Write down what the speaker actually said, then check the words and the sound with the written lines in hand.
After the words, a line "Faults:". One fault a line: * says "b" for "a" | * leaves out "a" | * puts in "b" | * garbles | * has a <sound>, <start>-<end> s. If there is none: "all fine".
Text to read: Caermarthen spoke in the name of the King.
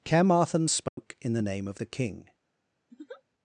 Caermarthen spoke in the name of the King.
Faults:
* has a dropout, 0.9-1.0 s
* has a laugh, 2.9-3.2 s